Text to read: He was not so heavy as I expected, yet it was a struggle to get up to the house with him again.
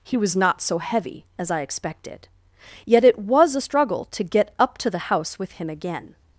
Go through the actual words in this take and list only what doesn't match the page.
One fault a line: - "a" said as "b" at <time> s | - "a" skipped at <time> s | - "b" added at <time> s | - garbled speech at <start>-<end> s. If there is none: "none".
none